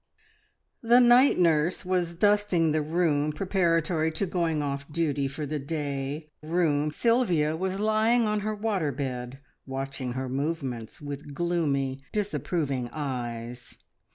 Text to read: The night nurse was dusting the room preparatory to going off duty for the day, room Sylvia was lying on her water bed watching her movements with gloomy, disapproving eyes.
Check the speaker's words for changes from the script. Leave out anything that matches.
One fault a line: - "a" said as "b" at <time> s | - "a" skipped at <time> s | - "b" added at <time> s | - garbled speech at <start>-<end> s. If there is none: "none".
none